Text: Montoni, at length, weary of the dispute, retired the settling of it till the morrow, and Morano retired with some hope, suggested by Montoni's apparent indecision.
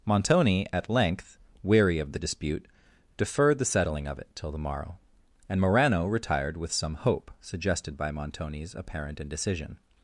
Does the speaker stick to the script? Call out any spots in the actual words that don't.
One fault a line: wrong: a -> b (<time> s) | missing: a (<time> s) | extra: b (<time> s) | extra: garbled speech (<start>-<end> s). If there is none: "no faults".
wrong: retired -> deferred (3.2 s)